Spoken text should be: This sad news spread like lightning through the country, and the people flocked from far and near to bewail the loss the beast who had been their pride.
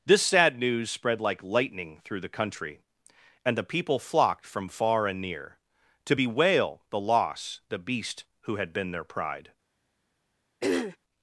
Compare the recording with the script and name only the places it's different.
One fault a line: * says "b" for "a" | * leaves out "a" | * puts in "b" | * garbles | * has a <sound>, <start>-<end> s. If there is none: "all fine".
* has a throat clearing, 10.6-11.0 s